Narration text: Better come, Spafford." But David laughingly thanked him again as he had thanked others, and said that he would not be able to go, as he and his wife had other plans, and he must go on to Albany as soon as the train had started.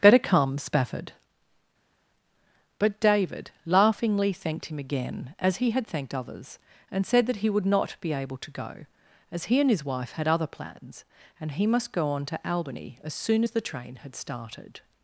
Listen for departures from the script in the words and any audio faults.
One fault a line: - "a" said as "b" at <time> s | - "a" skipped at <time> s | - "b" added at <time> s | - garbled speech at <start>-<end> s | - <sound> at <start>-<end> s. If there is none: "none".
none